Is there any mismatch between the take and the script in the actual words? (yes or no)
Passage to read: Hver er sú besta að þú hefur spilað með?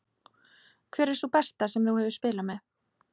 yes